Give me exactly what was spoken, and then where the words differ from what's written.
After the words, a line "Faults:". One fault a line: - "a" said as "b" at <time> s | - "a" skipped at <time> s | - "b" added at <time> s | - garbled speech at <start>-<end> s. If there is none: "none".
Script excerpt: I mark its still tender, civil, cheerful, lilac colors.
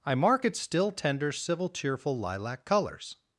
I mark its still tender, civil, cheerful, lilac colors.
Faults:
none